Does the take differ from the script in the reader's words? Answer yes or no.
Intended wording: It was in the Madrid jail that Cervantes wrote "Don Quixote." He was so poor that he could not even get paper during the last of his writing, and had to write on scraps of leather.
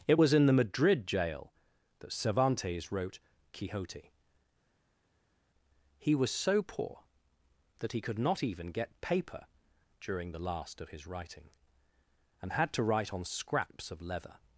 yes